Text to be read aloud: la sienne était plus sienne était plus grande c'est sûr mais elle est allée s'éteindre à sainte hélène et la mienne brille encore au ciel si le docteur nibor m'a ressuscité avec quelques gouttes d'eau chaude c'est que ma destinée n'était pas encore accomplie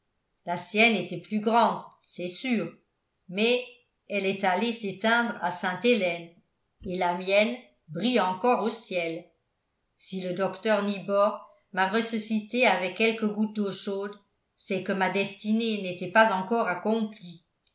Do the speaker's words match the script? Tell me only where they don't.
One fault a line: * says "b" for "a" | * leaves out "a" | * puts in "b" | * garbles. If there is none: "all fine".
* leaves out "sienne était plus"